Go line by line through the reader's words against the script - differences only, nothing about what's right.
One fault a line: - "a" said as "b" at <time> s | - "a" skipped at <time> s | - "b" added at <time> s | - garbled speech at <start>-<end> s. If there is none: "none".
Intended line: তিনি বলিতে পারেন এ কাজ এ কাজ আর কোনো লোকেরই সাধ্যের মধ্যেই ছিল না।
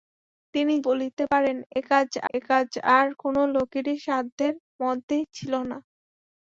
none